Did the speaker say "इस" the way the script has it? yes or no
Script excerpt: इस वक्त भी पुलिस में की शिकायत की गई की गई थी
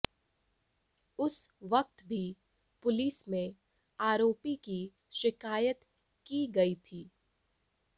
no